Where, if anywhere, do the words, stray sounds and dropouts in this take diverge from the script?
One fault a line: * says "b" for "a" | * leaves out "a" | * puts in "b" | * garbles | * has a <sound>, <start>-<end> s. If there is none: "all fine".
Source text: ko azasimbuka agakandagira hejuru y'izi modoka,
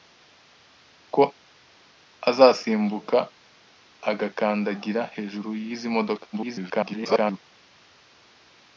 * garbles